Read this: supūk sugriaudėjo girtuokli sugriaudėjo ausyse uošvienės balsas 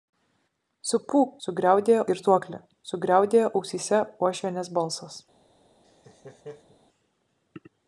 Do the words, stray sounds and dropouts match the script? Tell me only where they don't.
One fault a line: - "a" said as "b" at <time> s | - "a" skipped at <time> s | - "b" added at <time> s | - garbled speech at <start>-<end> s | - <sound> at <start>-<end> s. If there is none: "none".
- laugh at 5.8-6.8 s